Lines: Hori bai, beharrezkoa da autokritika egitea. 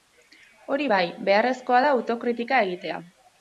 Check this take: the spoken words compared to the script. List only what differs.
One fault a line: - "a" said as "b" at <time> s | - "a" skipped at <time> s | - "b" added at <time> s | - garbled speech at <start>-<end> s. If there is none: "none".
none